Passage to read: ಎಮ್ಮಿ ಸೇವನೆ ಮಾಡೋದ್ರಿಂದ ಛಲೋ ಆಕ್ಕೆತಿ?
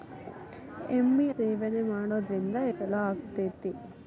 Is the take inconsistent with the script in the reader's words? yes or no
no